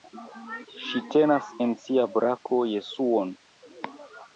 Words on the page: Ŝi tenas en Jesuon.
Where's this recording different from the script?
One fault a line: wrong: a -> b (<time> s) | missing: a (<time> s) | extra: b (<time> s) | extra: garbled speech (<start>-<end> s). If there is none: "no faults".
extra: sia brako (1.9 s)